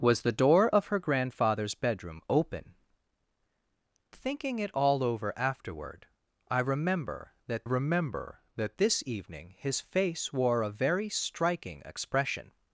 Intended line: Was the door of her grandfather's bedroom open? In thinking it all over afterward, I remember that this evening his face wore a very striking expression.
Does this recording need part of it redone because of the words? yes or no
yes